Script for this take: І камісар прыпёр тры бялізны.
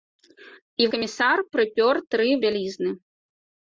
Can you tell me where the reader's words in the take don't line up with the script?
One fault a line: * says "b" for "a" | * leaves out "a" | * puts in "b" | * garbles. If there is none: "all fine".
all fine